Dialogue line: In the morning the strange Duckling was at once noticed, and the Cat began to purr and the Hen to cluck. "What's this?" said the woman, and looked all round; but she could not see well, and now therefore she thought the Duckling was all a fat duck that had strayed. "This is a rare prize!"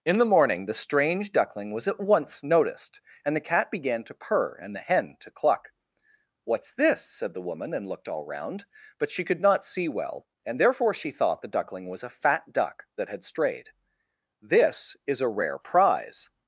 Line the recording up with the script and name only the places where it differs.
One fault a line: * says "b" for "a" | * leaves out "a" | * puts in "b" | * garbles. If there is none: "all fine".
* leaves out "now"
* leaves out "all"